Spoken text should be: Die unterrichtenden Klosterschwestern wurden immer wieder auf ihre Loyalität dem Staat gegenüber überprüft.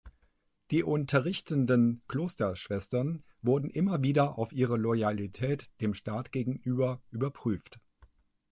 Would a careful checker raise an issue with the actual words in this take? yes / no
no